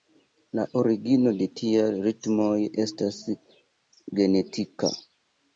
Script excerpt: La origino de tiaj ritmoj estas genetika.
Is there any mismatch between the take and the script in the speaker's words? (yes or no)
no